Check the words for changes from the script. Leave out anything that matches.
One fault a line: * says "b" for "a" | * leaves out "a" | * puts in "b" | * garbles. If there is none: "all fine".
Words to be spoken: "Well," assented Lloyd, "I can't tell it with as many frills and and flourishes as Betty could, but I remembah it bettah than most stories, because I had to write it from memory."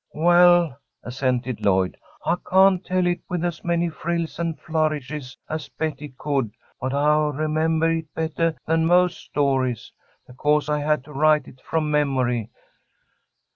* leaves out "and"